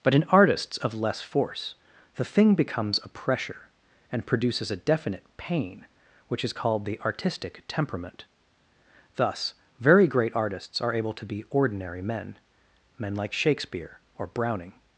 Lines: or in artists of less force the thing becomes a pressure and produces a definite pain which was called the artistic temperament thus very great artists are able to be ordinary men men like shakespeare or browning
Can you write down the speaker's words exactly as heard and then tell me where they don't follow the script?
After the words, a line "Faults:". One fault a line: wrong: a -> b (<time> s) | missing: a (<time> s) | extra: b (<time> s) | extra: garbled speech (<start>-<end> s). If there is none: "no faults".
but in artists of less force the thing becomes a pressure and produces a definite pain which is called the artistic temperament thus very great artists are able to be ordinary men men like shakespeare or browning
Faults:
wrong: or -> but (0.0 s)
wrong: was -> is (6.4 s)